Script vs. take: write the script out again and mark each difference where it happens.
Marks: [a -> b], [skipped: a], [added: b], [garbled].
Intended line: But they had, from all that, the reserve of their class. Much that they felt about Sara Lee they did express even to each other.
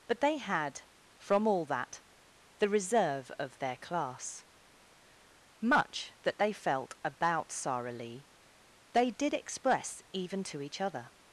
But they had, from all that, the reserve of their class. Much that they felt about Sara Lee they did express even to each other.